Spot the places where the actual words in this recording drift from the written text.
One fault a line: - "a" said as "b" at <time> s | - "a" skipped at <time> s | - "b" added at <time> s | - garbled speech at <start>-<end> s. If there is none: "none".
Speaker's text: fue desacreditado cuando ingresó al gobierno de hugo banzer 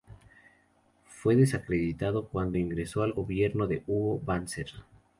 none